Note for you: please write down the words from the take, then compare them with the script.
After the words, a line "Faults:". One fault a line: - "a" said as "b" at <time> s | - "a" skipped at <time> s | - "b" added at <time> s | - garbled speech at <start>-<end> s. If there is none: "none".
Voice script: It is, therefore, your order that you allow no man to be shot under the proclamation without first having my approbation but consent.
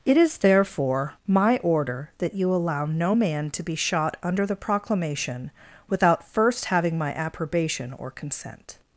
It is, therefore, my order that you allow no man to be shot under the proclamation without first having my approbation or consent.
Faults:
- "your" said as "my" at 1.3 s
- "but" said as "or" at 8.0 s